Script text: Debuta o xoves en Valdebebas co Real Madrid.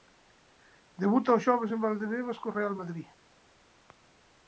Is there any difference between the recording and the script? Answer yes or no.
no